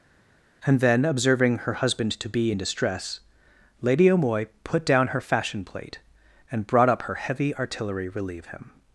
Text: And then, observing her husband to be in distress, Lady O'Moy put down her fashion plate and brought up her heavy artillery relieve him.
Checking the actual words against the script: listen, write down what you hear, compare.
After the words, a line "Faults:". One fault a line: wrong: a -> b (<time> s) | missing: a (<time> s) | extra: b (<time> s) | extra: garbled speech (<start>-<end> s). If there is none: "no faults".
And then, observing her husband to be in distress, Lady O'Moy put down her fashion plate and brought up her heavy artillery relieve him.
Faults:
no faults